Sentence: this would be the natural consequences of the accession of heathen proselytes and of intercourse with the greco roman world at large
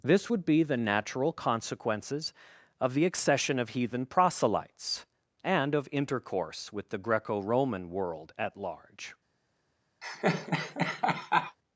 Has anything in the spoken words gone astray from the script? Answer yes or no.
no